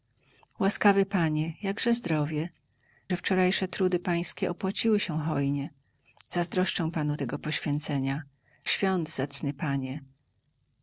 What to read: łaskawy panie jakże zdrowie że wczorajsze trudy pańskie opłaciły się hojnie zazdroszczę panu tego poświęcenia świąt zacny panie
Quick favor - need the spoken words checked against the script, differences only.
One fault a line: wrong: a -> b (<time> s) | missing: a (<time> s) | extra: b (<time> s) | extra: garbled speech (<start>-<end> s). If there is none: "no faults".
no faults